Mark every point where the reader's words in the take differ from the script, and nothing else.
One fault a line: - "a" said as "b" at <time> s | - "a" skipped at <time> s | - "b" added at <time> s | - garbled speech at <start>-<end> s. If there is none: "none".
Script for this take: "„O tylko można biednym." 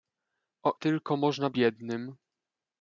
none